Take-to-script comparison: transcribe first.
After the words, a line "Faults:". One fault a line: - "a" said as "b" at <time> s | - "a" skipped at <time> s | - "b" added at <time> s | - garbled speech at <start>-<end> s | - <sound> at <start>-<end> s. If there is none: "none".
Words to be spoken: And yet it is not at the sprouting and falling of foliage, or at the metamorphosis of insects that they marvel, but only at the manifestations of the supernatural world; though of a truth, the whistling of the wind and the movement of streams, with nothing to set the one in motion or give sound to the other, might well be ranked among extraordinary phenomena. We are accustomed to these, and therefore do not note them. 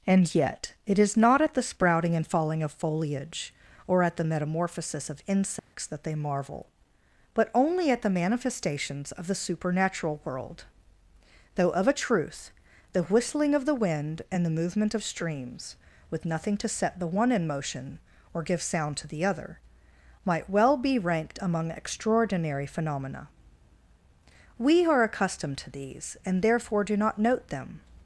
And yet it is not at the sprouting and falling of foliage, or at the metamorphosis of insects that they marvel, but only at the manifestations of the supernatural world; though of a truth, the whistling of the wind and the movement of streams, with nothing to set the one in motion or give sound to the other, might well be ranked among extraordinary phenomena. We are accustomed to these, and therefore do not note them.
Faults:
- dropout at 5.6-5.7 s